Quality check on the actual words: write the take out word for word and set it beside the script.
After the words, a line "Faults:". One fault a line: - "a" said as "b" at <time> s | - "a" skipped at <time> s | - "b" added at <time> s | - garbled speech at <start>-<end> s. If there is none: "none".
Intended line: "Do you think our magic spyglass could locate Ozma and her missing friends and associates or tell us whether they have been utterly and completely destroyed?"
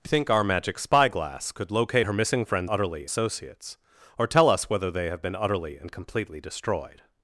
"Do think our magic spyglass could locate Her missing friends utterly associates or tell us whether they have been utterly and completely destroyed?"
Faults:
- "you" skipped at 0.1 s
- "Ozma and" skipped at 2.0 s
- "and" said as "utterly" at 2.7 s